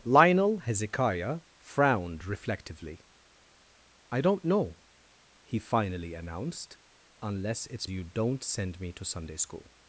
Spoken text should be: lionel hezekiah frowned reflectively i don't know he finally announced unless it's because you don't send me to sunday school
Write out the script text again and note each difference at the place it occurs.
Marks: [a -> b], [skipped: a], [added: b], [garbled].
lionel hezekiah frowned reflectively i don't know he finally announced unless it's [skipped: because] you don't send me to sunday school